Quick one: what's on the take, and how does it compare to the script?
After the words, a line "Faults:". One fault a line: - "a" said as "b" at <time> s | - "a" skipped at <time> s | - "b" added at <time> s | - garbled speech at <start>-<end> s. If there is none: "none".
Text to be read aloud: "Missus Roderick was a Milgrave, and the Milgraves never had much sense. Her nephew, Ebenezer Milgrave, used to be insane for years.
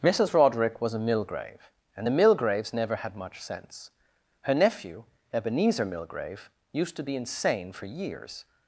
"Missus Roderick was a Milgrave, and the Milgraves never had much sense. Her nephew, Ebenezer Milgrave, used to be insane for years.
Faults:
none